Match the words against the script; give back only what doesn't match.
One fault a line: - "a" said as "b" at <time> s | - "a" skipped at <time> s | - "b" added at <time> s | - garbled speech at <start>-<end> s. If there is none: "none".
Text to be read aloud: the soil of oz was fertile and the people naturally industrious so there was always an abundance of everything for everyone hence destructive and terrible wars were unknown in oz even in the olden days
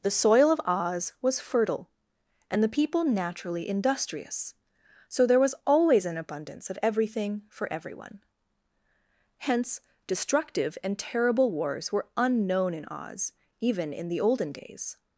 none